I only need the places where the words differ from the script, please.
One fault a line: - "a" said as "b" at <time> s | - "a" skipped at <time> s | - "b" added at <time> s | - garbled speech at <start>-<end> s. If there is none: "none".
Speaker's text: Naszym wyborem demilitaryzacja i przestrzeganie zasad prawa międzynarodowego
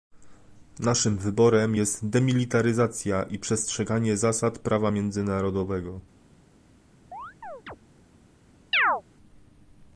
- "jest" added at 1.7 s